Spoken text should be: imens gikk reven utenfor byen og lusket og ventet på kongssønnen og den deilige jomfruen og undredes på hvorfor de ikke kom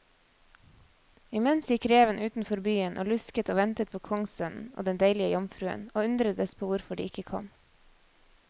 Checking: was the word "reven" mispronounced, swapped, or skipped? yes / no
no